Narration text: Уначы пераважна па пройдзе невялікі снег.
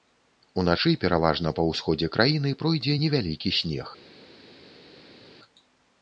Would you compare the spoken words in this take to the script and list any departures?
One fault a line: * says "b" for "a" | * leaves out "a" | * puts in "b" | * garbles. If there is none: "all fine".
* puts in "ўсходзе краіны"